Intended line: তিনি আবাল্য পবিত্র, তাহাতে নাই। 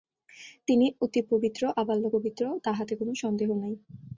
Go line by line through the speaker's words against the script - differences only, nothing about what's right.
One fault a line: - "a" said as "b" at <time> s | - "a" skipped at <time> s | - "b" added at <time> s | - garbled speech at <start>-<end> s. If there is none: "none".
- "অতি পবিত্র" added at 1.0 s
- "কোন সন্দেহ" added at 2.9 s